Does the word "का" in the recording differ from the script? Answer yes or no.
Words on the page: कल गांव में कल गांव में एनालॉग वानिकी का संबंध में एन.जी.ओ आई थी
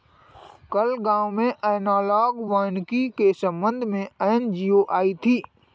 yes